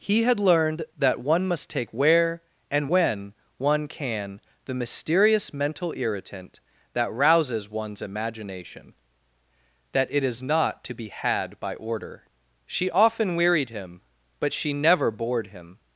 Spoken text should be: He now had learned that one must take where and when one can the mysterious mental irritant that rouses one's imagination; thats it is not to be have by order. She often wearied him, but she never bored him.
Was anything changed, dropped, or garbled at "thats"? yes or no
yes